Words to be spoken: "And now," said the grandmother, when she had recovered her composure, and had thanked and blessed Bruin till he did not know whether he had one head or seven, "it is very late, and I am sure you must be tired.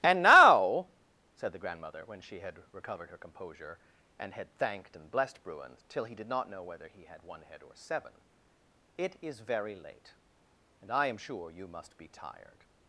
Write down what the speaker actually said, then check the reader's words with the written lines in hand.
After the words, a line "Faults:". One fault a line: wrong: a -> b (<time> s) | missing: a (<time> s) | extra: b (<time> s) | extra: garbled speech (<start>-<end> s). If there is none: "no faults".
"And now," said the grandmother, when she had recovered her composure, and had thanked and blessed Bruin till he did not know whether he had one head or seven, "it is very late, and I am sure you must be tired.
Faults:
no faults